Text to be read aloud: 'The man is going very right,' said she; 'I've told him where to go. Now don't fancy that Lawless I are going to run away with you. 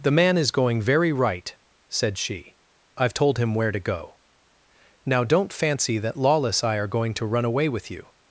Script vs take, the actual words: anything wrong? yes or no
no